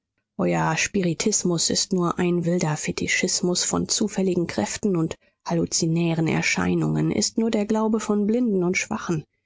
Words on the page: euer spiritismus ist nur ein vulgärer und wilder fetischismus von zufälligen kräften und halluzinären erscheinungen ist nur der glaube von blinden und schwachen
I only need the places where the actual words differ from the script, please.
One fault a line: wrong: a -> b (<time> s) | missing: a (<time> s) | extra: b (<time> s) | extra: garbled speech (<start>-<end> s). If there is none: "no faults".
missing: vulgärer und (2.4 s)